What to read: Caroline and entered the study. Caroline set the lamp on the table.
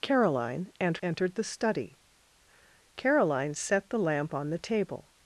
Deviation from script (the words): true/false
false